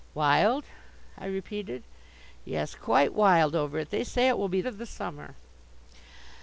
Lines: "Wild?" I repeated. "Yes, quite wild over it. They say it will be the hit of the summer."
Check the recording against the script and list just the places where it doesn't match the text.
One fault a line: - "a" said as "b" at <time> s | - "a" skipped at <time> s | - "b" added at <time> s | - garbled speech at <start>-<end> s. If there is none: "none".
- "the hit" skipped at 4.6 s